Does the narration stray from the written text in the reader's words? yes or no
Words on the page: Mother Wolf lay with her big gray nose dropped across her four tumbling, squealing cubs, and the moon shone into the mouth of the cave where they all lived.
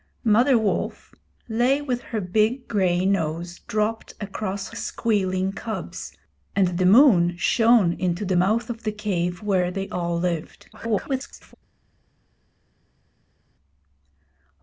yes